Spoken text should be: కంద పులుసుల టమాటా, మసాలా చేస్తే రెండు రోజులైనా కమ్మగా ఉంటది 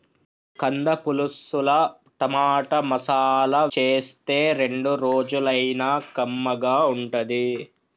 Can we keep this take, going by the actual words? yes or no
yes